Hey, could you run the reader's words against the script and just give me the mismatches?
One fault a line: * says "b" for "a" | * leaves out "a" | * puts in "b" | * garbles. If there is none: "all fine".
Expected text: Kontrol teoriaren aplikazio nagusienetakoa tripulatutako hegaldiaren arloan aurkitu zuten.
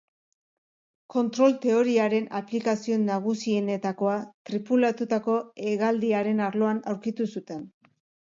all fine